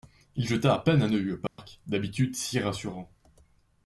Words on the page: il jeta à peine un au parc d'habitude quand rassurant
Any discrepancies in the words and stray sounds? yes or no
yes